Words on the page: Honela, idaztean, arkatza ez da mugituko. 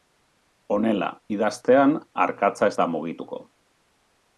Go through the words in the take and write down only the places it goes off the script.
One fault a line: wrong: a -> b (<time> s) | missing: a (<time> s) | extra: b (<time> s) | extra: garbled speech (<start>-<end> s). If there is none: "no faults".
no faults